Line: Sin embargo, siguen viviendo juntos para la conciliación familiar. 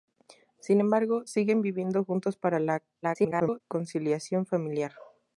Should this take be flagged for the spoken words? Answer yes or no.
yes